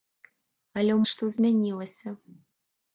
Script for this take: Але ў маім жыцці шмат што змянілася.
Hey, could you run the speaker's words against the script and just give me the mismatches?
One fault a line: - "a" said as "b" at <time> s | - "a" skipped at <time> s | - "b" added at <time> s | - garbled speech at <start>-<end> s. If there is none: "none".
- "маім жыцці шмат" skipped at 1.0 s